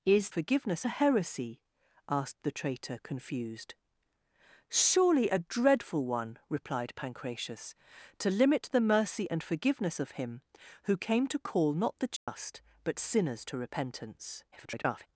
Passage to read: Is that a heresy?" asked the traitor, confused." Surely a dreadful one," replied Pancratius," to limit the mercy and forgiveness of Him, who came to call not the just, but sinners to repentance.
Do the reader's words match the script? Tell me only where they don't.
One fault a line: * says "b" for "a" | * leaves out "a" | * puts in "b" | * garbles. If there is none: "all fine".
* says "forgiveness" for "that"
* garbles